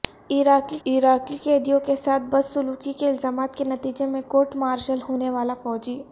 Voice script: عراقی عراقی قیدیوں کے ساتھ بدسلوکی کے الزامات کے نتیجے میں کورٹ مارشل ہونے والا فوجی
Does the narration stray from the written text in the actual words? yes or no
no